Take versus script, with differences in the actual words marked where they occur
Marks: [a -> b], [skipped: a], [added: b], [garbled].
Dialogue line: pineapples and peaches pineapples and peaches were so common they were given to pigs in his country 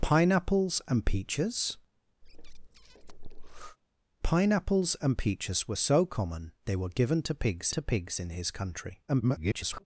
pineapples and peaches pineapples and peaches were so common they were given to pigs [added: to pigs] in his country [garbled]